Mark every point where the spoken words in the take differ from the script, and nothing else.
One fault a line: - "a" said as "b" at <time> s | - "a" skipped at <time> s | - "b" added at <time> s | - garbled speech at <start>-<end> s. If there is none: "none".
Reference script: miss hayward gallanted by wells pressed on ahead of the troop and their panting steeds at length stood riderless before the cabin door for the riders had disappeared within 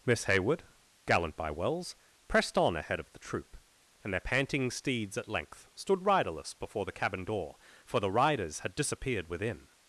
- "gallanted" said as "gallant" at 1.1 s